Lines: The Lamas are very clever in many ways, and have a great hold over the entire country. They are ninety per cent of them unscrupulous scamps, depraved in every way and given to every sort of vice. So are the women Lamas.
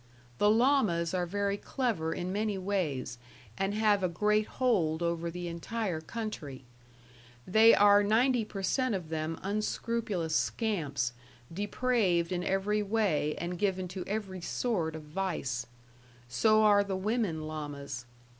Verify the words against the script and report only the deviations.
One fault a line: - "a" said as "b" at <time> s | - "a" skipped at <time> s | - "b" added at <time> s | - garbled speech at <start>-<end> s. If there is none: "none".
none